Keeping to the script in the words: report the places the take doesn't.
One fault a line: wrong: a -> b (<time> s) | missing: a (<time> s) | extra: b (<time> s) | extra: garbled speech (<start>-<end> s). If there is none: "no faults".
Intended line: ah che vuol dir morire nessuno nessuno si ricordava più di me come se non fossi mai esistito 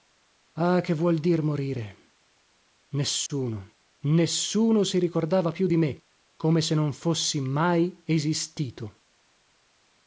no faults